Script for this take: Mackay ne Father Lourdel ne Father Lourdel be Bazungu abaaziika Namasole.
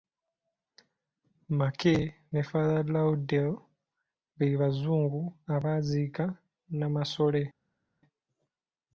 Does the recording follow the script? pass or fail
fail